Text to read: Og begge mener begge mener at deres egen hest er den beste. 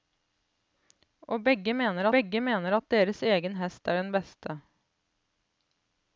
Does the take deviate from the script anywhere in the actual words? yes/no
no